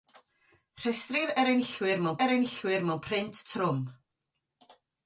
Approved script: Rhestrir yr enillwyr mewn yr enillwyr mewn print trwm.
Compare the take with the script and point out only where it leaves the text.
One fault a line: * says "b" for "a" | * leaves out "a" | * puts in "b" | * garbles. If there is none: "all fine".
all fine